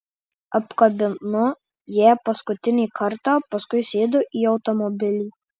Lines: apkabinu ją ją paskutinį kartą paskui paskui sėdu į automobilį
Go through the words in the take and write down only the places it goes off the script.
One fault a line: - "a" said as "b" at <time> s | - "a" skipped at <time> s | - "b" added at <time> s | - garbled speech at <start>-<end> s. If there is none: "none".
- "ją" skipped at 2.1 s
- "paskui" skipped at 3.9 s